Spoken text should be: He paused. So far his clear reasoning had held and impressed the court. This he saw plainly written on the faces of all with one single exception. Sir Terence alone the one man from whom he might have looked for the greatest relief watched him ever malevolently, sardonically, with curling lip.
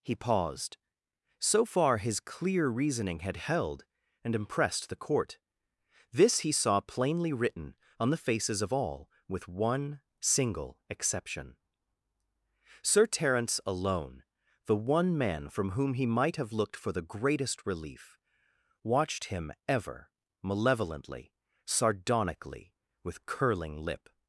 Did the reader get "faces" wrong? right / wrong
right